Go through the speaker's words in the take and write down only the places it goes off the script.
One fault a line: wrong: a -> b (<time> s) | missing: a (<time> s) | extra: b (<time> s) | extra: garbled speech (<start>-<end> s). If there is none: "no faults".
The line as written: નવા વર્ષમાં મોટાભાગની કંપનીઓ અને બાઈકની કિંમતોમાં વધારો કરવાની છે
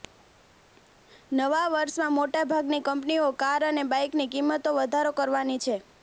extra: કાર (3.4 s)